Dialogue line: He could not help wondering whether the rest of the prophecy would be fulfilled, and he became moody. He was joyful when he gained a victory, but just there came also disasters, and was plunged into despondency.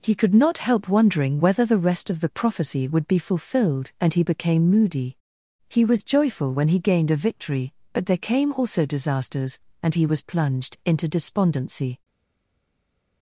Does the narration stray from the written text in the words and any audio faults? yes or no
yes